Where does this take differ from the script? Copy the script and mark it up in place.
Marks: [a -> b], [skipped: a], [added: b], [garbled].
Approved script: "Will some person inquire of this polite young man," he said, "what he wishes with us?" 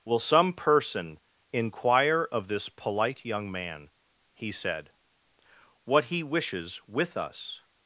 "Will some person inquire of this polite young man," he said, "what he wishes with us?"